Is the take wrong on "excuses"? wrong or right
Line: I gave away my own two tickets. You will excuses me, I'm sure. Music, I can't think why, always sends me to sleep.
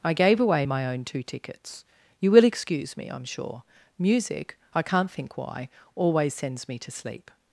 wrong